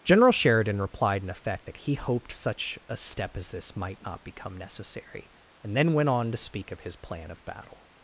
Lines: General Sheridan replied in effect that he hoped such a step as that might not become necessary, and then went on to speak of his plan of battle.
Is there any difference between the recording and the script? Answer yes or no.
yes